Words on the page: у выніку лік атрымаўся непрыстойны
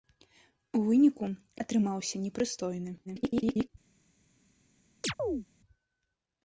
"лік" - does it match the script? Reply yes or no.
no